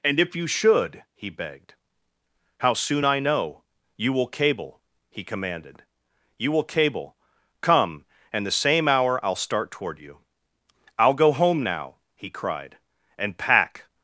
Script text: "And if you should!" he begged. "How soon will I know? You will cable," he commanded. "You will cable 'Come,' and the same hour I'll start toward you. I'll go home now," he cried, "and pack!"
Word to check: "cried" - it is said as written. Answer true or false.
true